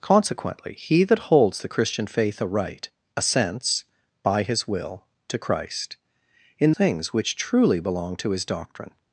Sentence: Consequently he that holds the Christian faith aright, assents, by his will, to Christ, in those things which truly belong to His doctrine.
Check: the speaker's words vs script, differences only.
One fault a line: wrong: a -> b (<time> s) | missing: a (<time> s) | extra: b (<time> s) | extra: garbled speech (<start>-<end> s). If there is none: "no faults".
missing: those (6.7 s)